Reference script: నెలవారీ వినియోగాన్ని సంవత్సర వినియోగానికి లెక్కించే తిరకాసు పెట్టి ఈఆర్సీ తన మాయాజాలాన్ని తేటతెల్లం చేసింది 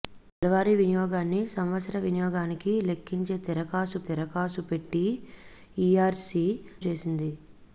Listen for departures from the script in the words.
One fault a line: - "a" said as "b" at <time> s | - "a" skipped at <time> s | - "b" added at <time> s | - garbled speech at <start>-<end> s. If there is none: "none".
- "తిరకాసు" added at 4.1 s
- "తన మాయాజాలాన్ని తేటతెల్లం" skipped at 6.5 s